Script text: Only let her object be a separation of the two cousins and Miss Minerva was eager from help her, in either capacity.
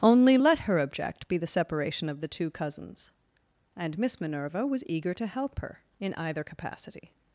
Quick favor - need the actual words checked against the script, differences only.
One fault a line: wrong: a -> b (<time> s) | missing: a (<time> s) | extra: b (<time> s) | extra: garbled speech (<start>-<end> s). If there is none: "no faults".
wrong: a -> the (1.4 s)
wrong: from -> to (5.1 s)